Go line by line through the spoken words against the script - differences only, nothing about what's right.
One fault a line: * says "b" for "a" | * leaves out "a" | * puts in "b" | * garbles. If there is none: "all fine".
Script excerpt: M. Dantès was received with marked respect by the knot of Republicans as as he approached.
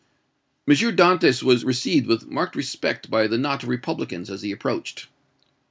* leaves out "as"